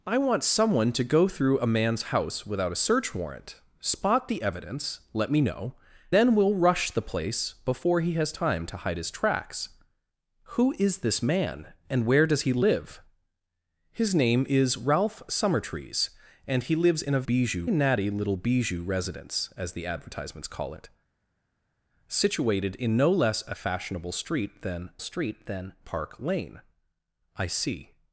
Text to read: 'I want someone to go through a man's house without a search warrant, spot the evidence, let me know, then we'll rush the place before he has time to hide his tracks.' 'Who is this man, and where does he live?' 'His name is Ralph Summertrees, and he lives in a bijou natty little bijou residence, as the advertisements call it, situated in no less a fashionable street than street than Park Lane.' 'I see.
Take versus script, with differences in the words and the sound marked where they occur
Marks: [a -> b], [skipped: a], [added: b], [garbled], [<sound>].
'I want someone to go through a man's house without a search warrant, spot the evidence, let me know, then we'll rush the place before he has time to hide his tracks.' 'Who is this man, and where does he live?' 'His name is Ralph Summertrees, and he lives in a bijou natty little bijou residence, as the advertisements call it, situated in no less a fashionable street than street than Park Lane.' 'I see.